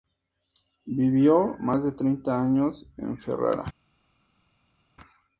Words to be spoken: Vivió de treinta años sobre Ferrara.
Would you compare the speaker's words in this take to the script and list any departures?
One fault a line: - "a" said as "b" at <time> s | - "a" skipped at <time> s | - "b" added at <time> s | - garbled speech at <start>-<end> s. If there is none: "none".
- "más" added at 1.6 s
- "sobre" said as "en" at 3.0 s